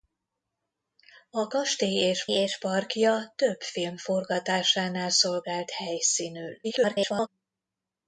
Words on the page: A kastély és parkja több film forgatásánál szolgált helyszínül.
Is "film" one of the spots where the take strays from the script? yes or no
no